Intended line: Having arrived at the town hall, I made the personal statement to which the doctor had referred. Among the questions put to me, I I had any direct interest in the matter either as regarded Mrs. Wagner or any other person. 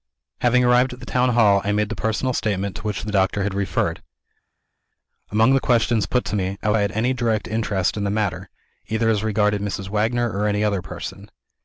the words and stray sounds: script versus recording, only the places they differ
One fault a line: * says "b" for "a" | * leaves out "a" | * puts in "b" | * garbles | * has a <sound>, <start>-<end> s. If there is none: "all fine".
all fine